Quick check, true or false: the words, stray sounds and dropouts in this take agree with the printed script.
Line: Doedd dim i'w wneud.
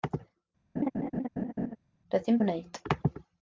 false